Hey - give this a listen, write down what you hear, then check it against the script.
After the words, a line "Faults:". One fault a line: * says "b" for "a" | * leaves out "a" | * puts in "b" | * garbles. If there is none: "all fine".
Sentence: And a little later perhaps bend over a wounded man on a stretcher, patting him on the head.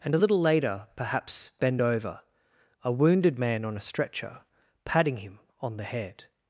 And a little later perhaps bend over a wounded man on a stretcher, patting him on the head.
Faults:
all fine